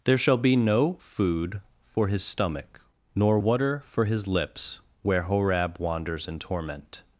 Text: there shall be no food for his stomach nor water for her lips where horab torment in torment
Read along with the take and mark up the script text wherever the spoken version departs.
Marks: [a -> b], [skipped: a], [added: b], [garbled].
there shall be no food for his stomach nor water for [her -> his] lips where horab [torment -> wanders] in torment